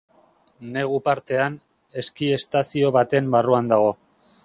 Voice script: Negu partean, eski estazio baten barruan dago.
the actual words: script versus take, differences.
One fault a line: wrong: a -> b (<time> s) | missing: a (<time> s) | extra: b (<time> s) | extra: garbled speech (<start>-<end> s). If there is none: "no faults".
no faults